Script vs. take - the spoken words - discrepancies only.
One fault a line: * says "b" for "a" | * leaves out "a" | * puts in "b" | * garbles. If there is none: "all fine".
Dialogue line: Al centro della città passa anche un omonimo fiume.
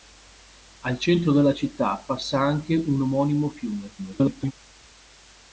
* garbles